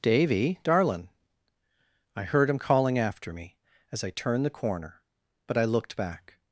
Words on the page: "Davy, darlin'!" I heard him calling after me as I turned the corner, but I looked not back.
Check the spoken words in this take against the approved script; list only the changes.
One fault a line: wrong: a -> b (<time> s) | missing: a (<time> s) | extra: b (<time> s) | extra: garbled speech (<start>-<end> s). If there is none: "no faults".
missing: not (6.0 s)